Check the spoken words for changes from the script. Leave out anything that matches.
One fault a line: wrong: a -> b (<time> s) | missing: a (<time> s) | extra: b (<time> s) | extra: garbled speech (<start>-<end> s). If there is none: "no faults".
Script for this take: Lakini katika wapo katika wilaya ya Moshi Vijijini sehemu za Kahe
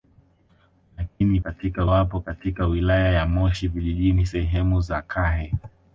no faults